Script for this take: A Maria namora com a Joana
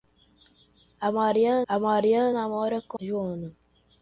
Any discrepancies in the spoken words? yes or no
yes